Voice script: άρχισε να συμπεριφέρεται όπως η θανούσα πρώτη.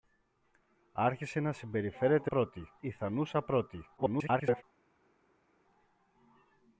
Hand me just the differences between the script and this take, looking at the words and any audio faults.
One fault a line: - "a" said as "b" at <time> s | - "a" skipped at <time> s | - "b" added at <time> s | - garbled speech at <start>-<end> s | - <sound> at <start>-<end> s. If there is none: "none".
- "όπως" said as "πρώτη" at 2.2 s
- garbled speech at 4.0-4.6 s